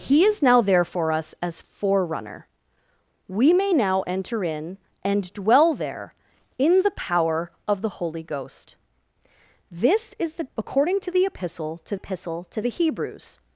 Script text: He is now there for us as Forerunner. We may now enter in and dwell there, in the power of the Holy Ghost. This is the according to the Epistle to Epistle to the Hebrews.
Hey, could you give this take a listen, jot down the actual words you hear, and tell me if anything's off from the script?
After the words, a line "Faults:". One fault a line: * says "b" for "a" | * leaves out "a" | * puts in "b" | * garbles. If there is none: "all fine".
He is now there for us as Forerunner. We may now enter in and dwell there, in the power of the Holy Ghost. This is the according to the Epistle to Epistle to the Hebrews.
Faults:
all fine